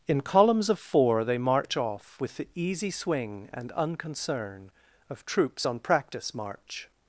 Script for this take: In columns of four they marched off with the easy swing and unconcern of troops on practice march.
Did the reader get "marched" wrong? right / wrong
wrong